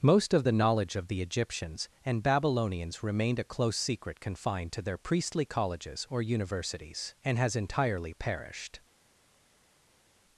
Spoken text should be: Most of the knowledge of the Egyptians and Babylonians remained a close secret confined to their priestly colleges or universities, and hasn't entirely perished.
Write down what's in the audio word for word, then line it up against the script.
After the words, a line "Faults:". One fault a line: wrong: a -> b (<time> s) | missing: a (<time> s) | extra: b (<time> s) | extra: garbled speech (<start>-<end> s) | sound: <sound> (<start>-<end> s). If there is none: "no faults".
Most of the knowledge of the Egyptians and Babylonians remained a close secret confined to their priestly colleges or universities, and has entirely perished.
Faults:
wrong: hasn't -> has (7.4 s)